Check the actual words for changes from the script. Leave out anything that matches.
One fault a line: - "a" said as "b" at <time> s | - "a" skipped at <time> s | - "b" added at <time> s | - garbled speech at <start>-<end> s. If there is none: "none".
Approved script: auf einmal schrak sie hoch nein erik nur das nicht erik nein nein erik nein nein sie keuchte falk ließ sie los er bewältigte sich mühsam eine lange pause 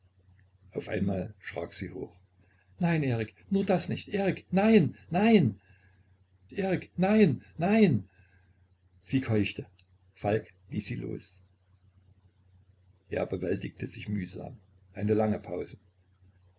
none